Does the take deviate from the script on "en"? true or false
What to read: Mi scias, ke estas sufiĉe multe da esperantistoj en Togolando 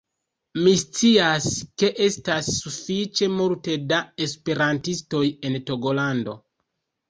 false